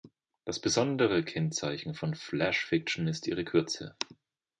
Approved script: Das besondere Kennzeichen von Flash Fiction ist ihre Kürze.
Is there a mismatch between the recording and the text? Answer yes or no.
no